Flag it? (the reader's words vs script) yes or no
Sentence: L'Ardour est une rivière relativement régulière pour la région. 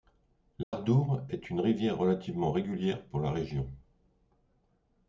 no